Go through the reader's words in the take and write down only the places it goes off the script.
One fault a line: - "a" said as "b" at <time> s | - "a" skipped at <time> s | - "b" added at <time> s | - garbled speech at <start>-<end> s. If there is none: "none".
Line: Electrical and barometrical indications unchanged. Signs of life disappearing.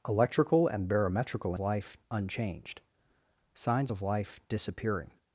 - "indications" said as "life" at 1.6 s